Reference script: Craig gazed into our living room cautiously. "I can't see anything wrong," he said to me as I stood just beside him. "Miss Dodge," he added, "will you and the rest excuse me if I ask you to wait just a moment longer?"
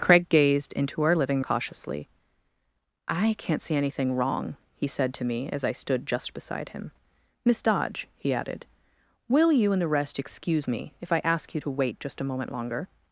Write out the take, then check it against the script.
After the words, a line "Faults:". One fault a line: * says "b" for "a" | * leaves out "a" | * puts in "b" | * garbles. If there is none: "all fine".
Craig gazed into our living cautiously. "I can't see anything wrong," he said to me as I stood just beside him. "Miss Dodge," he added, "will you and the rest excuse me if I ask you to wait just a moment longer?"
Faults:
* leaves out "room"